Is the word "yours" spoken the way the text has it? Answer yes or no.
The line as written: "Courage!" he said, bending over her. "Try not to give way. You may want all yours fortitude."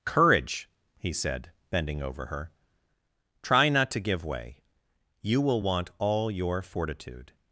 no